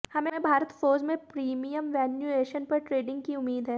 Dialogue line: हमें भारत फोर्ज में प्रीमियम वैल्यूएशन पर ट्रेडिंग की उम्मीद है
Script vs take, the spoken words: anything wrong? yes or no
no